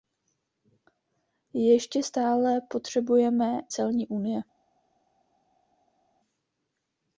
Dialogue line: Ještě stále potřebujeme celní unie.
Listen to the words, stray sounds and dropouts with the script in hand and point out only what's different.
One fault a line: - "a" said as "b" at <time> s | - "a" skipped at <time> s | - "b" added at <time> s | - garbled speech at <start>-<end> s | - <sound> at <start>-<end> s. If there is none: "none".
none